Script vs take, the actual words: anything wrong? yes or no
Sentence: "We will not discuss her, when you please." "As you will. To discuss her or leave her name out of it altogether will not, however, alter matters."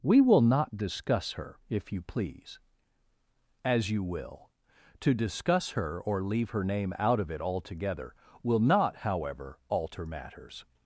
yes